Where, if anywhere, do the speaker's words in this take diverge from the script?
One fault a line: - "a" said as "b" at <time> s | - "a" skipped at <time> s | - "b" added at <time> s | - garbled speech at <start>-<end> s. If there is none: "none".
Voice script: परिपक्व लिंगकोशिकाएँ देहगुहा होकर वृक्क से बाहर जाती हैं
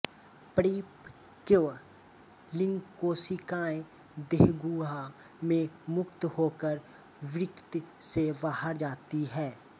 - "में मुक्त" added at 5.4 s